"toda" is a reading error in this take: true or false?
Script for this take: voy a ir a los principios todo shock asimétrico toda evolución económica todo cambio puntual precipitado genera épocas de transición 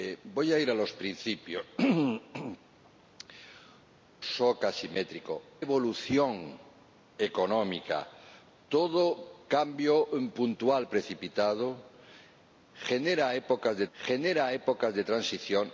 true